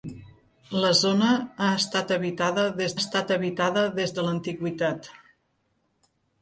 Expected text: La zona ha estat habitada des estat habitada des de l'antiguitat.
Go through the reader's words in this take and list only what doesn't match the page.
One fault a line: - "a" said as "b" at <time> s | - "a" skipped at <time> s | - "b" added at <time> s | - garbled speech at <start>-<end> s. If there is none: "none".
none